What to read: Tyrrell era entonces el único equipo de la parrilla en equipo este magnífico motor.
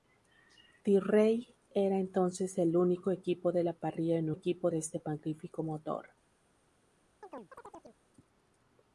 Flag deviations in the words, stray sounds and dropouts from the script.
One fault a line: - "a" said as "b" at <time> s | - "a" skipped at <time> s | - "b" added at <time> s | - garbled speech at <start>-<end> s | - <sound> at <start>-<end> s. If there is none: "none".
- chirp at 7.2-8.0 s